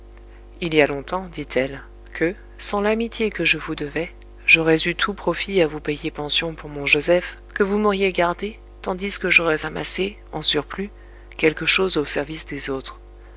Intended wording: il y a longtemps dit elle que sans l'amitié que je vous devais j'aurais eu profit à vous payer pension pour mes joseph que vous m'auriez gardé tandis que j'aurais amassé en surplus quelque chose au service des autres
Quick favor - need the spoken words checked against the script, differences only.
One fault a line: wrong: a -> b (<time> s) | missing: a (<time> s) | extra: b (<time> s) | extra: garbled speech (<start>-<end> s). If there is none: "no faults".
extra: tout (5.0 s)
wrong: mes -> mon (6.7 s)